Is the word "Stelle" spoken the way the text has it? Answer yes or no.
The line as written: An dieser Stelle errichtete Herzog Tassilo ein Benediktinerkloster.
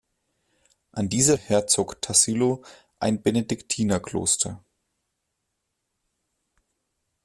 no